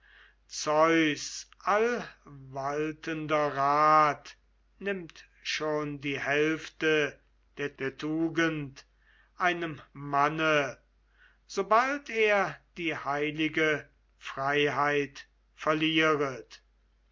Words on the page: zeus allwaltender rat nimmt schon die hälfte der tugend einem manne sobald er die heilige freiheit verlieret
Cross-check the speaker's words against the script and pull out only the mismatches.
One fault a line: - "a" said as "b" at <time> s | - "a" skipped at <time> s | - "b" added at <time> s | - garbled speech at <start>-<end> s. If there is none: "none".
- "der" added at 7.8 s